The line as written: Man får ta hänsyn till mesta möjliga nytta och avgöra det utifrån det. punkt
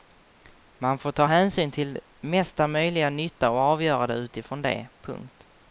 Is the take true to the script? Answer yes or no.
yes